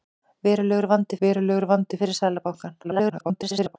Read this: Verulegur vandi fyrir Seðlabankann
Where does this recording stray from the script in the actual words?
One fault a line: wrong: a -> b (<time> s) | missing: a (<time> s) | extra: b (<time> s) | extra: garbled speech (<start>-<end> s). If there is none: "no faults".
extra: verulegur vandi (1.2 s)
extra: garbled speech (2.8-3.8 s)